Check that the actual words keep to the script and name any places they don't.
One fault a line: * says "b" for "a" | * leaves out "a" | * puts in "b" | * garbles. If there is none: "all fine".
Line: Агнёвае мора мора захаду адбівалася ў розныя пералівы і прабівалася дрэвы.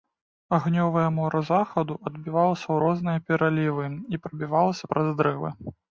* leaves out "мора"
* puts in "праз"